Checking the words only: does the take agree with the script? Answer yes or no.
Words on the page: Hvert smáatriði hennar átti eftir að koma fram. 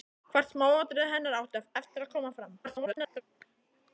no